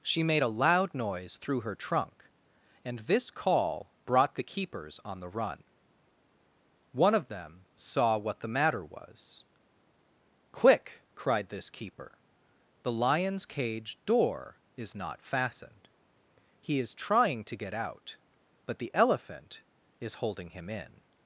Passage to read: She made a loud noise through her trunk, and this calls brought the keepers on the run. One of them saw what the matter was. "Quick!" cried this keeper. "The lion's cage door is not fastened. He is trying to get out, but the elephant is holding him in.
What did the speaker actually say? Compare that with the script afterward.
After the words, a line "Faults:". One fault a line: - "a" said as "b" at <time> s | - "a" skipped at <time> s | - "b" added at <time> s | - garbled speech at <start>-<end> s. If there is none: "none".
She made a loud noise through her trunk, and this call brought the keepers on the run. One of them saw what the matter was. "Quick!" cried this keeper. "The lion's cage door is not fastened. He is trying to get out, but the elephant is holding him in.
Faults:
- "calls" said as "call" at 3.3 s